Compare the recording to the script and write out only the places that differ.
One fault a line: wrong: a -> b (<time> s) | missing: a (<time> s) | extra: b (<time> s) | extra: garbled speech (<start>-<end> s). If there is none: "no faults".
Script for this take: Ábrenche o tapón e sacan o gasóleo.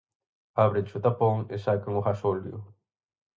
no faults